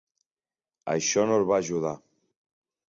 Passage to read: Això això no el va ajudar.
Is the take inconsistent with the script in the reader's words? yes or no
yes